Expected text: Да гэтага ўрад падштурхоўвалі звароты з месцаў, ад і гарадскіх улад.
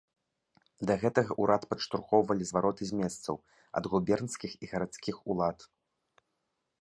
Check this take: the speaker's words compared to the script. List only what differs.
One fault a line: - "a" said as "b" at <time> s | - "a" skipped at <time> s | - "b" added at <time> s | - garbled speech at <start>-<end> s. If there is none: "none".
- "губернскіх" added at 3.9 s